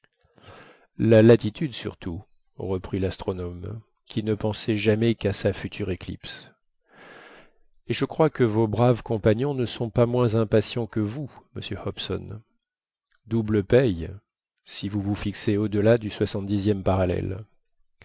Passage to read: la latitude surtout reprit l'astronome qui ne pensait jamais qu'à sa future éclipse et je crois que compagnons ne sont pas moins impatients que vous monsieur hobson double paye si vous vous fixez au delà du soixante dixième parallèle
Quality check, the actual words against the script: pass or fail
fail